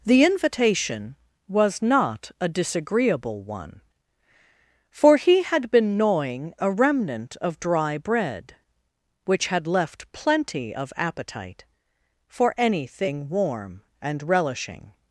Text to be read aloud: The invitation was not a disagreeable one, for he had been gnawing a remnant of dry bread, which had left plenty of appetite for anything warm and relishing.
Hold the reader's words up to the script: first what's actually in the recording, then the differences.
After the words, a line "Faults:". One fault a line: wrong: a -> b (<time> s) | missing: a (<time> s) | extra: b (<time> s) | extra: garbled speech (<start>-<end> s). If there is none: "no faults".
The invitation was not a disagreeable one, for he had been gnawing a remnant of dry bread, which had left plenty of appetite for anything warm and relishing.
Faults:
no faults